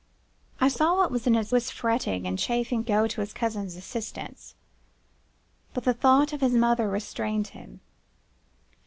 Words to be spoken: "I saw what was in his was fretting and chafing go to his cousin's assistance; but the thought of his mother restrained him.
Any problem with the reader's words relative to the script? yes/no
no